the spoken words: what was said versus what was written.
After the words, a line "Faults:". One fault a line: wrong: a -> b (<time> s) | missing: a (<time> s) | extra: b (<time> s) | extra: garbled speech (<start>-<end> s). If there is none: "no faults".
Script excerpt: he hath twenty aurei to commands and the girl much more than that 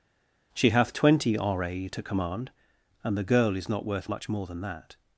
she hath twenty aurei to command and the girl is not worth much more than that
Faults:
wrong: he -> she (0.5 s)
wrong: commands -> command (2.0 s)
extra: is not worth (3.6 s)